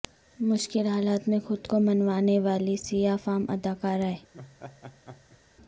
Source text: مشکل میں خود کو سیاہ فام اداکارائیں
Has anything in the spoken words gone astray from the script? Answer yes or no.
yes